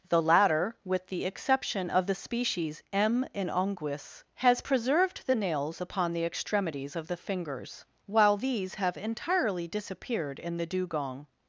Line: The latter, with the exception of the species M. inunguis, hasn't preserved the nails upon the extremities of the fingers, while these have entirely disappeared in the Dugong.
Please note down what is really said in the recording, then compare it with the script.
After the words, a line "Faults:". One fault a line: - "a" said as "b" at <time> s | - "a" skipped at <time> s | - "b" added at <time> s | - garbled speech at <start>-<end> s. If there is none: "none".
The latter, with the exception of the species M. inunguis, has preserved the nails upon the extremities of the fingers, while these have entirely disappeared in the Dugong.
Faults:
- "hasn't" said as "has" at 4.3 s